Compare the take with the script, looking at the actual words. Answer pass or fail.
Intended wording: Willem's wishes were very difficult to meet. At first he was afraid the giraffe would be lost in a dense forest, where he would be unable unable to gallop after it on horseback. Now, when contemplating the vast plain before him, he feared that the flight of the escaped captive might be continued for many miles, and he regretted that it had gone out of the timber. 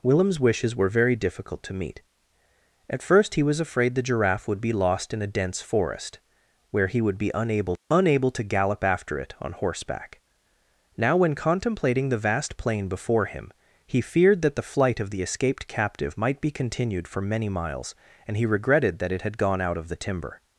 pass